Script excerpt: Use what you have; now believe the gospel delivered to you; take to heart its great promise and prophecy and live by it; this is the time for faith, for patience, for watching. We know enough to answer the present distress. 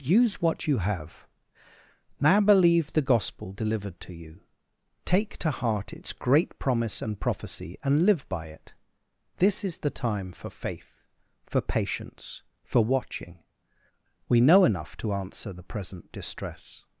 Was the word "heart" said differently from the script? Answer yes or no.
no